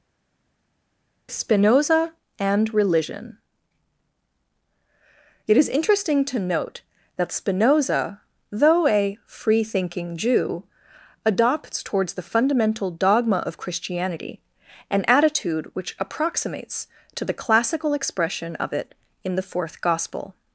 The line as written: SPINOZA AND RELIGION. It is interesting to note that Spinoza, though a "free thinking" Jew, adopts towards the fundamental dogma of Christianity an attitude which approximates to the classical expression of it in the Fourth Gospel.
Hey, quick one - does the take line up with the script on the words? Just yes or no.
yes